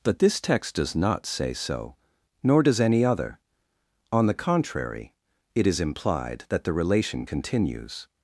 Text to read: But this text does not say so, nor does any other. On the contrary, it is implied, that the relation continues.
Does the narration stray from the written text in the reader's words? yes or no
no